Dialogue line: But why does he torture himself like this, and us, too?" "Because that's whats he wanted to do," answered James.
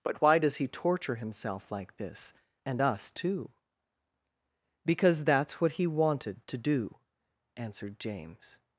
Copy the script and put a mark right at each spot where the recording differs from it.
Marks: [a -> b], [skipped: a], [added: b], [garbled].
But why does he torture himself like this, and us, too?" "Because that's [whats -> what] he wanted to do," answered James.